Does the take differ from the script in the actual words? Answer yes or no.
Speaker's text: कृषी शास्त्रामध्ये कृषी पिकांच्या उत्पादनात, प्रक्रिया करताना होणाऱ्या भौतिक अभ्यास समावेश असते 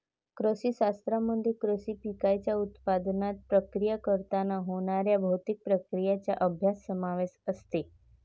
yes